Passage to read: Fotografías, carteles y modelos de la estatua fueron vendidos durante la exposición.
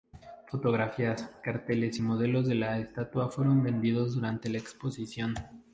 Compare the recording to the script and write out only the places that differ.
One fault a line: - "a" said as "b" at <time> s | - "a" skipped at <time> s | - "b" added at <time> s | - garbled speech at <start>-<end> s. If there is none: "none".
none